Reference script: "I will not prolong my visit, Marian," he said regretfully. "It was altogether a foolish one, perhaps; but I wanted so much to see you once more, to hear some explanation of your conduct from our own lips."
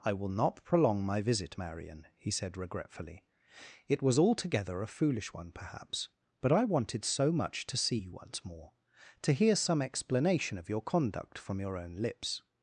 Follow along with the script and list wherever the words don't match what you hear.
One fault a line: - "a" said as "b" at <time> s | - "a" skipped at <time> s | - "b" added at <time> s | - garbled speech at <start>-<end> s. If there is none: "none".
- "our" said as "your" at 11.6 s